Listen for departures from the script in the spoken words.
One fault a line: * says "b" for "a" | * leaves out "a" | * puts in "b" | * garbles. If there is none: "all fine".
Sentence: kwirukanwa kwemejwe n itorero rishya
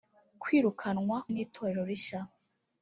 * leaves out "kwemejwe"